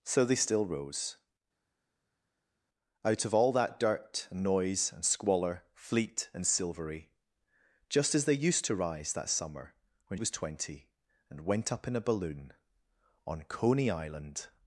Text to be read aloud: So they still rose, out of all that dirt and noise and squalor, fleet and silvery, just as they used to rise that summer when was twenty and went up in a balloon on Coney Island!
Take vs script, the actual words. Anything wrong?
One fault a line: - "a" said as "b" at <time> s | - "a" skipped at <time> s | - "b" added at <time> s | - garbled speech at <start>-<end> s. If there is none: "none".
none